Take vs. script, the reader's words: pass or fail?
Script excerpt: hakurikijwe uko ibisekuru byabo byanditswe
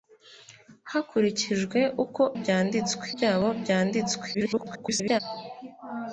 fail